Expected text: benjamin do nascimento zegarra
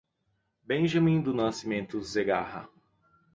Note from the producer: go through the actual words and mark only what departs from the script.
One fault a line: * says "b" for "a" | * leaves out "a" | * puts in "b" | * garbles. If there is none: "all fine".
all fine